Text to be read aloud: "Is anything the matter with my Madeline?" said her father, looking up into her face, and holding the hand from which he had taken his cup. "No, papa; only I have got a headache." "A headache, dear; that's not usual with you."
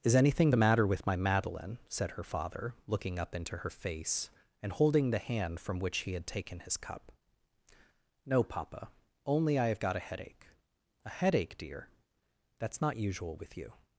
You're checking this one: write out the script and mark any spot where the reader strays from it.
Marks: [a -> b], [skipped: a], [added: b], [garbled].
"Is anything the matter with my Madeline?" said her father, looking up into her face, and holding the hand from which he had taken his cup. "No, papa; only I have got a headache." "A headache, dear; that's not usual with you."